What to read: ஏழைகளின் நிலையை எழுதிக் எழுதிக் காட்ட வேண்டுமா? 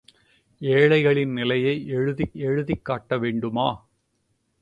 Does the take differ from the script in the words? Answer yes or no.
no